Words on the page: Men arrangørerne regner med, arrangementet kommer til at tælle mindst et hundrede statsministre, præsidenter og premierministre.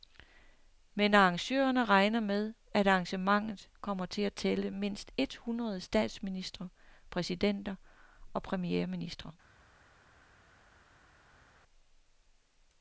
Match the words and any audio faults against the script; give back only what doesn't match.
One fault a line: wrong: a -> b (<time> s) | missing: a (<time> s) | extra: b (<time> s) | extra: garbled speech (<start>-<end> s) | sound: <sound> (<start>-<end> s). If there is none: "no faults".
extra: at (2.7 s)